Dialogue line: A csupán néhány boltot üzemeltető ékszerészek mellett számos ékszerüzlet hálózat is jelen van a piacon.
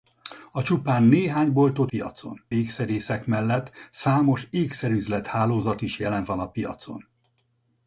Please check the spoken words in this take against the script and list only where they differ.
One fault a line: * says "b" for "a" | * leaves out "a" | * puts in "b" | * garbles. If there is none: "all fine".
* says "piacon" for "üzemeltető"